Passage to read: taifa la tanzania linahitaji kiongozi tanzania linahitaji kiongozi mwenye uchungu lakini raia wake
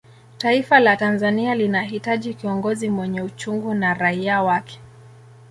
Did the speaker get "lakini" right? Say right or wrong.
wrong